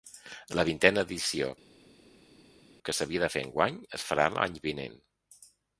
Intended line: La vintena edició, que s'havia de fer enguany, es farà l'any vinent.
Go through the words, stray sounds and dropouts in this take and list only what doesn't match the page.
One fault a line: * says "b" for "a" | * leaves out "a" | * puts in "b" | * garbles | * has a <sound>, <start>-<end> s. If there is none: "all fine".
all fine